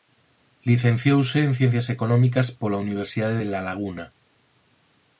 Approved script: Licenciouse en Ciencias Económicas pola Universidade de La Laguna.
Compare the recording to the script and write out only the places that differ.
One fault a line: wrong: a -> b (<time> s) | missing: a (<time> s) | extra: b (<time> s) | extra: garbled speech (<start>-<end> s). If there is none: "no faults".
no faults